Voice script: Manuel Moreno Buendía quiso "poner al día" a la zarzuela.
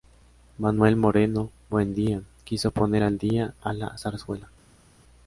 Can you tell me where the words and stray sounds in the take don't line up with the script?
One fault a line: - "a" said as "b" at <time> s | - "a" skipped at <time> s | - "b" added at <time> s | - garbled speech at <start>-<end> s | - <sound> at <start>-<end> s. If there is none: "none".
none